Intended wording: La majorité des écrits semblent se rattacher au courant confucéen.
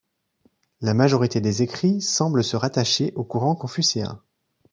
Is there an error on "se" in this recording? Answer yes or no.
no